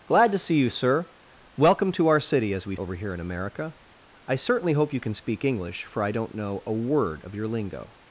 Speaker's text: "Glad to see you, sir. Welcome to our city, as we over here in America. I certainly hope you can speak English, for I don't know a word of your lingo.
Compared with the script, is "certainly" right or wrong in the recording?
right